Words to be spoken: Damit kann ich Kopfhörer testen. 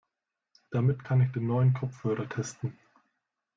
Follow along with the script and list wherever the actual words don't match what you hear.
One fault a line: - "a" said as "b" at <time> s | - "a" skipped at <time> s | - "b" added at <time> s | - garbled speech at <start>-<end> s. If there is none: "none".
- "den neuen" added at 1.3 s